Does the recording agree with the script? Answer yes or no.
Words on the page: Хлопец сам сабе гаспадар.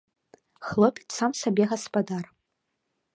yes